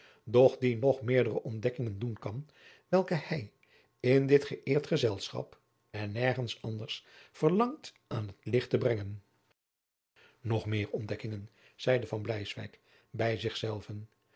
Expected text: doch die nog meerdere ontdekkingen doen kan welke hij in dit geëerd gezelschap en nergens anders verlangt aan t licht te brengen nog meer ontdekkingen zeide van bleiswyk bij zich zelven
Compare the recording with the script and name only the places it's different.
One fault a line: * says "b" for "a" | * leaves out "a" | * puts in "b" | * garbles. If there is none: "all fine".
all fine